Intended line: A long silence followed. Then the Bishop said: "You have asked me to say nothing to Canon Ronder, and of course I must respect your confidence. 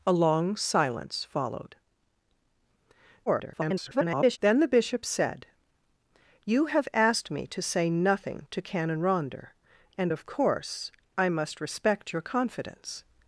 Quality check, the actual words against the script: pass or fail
fail